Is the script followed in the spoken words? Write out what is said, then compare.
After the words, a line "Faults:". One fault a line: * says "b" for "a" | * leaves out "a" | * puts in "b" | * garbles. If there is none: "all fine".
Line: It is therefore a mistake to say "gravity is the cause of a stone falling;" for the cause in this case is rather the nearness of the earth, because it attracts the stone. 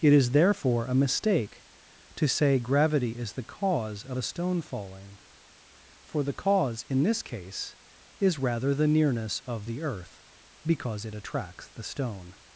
It is therefore a mistake to say "gravity is the cause of a stone falling;" for the cause in this case is rather the nearness of the earth, because it attracts the stone.
Faults:
all fine